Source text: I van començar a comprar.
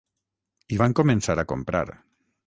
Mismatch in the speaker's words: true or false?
false